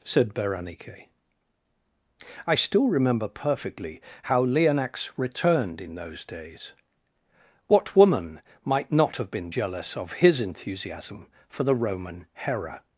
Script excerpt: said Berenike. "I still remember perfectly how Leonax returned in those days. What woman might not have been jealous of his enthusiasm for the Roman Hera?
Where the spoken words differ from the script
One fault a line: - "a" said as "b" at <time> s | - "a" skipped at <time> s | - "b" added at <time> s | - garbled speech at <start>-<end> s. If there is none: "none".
none